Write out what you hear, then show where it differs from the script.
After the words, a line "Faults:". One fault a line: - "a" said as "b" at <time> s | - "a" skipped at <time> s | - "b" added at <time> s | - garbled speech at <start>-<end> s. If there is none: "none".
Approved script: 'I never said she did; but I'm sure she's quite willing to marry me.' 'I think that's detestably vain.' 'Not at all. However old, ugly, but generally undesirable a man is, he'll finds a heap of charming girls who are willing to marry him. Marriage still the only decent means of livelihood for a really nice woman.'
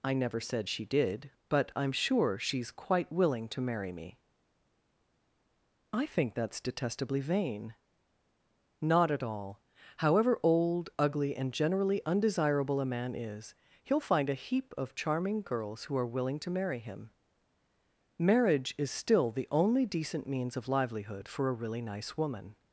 'I never said she did; but I'm sure she's quite willing to marry me.' 'I think that's detestably vain.' 'Not at all. However old, ugly, and generally undesirable a man is, he'll find a heap of charming girls who are willing to marry him. Marriage is still the only decent means of livelihood for a really nice woman.'
Faults:
- "but" said as "and" at 11.3 s
- "finds" said as "find" at 14.0 s
- "is" added at 18.8 s